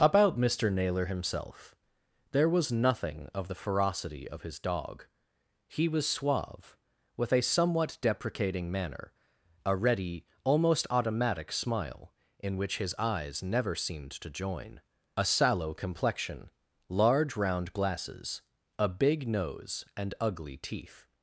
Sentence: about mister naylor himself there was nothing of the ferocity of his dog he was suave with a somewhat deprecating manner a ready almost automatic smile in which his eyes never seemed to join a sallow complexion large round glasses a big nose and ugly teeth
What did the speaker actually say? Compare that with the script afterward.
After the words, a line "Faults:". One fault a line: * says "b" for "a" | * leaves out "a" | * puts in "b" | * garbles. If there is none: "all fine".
about mister naylor himself there was nothing of the ferocity of his dog he was suave with a somewhat deprecating manner a ready almost automatic smile in which his eyes never seemed to join a sallow complexion large round glasses a big nose and ugly teeth
Faults:
all fine